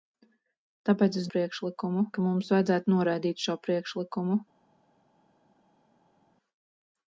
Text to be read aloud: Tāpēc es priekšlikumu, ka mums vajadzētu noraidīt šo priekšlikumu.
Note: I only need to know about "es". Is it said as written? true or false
true